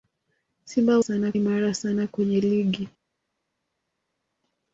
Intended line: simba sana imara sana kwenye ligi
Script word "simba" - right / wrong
right